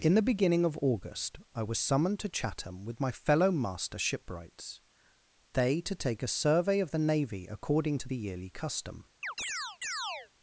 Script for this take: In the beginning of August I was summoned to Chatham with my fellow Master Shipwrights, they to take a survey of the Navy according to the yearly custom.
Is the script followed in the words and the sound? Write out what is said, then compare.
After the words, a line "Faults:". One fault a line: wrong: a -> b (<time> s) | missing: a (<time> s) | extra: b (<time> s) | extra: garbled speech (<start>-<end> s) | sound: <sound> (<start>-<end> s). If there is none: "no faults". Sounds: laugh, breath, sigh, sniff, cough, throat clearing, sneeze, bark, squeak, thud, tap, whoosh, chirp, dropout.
In the beginning of August I was summoned to Chatham with my fellow Master Shipwrights, they to take a survey of the Navy according to the yearly custom.
Faults:
sound: chirp (9.2-10.3 s)